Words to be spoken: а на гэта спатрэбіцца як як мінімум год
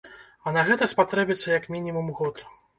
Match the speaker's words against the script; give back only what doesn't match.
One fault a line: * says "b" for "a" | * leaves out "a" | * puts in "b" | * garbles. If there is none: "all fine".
* leaves out "як"